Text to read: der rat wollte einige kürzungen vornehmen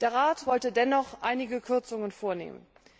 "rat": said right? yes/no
yes